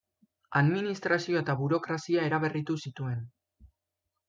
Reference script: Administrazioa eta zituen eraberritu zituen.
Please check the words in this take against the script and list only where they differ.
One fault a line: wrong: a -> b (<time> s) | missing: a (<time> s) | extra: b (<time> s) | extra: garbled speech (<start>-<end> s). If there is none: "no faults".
wrong: zituen -> burokrazia (1.6 s)